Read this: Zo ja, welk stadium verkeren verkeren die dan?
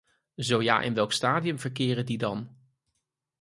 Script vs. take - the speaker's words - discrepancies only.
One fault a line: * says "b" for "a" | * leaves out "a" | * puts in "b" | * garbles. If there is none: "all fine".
* puts in "in"
* leaves out "verkeren"